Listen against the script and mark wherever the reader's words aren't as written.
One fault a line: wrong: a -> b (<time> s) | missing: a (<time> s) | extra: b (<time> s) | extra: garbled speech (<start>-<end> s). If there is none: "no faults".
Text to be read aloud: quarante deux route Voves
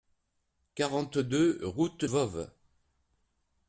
no faults